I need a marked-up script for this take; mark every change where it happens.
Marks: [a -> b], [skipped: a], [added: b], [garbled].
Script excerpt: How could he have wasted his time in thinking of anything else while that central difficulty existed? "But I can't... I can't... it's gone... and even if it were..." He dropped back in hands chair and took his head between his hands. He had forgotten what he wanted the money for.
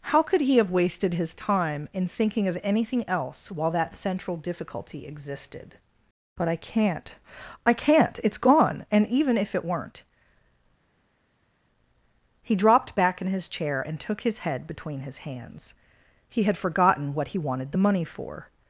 How could he have wasted his time in thinking of anything else while that central difficulty existed? "But I can't... I can't... it's gone... and even if it [were..." -> weren't] He dropped back in [hands -> his] chair and took his head between his hands. He had forgotten what he wanted the money for.